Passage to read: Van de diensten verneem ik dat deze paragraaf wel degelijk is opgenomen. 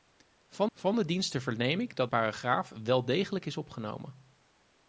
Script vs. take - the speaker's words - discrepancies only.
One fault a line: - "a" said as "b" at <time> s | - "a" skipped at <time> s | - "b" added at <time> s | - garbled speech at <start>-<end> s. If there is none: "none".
- "van" added at 0.7 s
- "deze" skipped at 2.1 s